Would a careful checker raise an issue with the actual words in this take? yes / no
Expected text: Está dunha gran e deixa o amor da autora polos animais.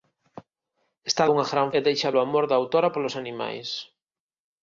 no